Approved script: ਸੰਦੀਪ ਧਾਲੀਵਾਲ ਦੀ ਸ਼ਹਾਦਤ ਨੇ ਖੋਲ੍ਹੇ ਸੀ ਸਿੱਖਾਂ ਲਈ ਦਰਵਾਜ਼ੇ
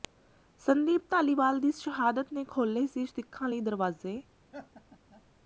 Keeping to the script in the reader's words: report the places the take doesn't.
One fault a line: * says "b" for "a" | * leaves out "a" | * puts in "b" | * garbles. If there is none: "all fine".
all fine